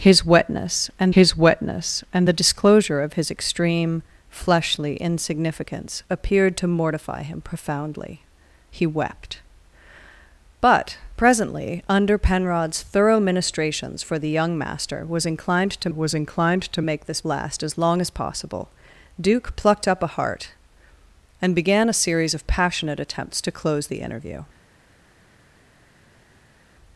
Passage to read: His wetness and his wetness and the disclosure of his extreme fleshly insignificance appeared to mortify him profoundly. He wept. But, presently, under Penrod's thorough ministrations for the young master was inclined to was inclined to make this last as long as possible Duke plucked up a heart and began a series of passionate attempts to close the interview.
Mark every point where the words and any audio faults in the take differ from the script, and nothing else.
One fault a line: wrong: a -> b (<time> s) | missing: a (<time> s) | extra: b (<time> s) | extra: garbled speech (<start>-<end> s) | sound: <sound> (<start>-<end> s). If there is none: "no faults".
no faults